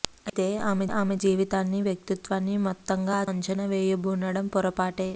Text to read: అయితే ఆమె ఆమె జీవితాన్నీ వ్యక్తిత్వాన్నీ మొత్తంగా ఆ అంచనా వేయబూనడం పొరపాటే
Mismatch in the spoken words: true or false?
false